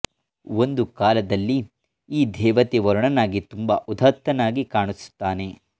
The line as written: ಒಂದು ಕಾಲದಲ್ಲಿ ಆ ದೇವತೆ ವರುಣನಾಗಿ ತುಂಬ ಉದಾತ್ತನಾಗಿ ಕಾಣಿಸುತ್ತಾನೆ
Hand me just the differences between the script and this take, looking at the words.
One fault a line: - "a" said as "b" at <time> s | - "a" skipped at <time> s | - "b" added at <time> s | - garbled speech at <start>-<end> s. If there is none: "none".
- "ಆ" said as "ಈ" at 2.1 s